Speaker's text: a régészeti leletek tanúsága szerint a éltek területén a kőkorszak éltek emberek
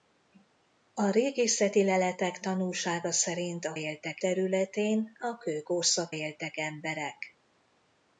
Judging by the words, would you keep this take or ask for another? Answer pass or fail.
pass